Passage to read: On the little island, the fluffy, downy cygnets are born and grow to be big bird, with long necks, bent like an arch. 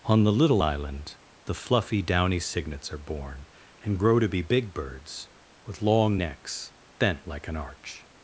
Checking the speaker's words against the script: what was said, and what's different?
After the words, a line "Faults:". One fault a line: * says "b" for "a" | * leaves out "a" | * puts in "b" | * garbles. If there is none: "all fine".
On the little island, the fluffy, downy cygnets are born and grow to be big birds, with long necks, bent like an arch.
Faults:
* says "birds" for "bird"